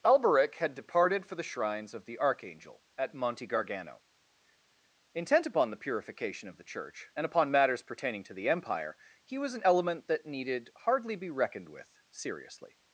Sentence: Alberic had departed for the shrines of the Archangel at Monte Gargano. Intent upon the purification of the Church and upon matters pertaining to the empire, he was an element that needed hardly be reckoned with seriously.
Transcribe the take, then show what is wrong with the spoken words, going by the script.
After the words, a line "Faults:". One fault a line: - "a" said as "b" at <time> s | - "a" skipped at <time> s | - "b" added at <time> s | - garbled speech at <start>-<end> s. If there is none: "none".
Alberic had departed for the shrines of the Archangel at Monte Gargano. Intent upon the purification of the Church and upon matters pertaining to the empire, he was an element that needed hardly be reckoned with seriously.
Faults:
none